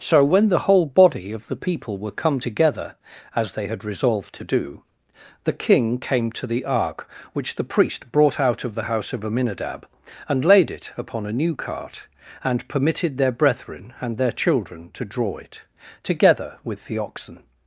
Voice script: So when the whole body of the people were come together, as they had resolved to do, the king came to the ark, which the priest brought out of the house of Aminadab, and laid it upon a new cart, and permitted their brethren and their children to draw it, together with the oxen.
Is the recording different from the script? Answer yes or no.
no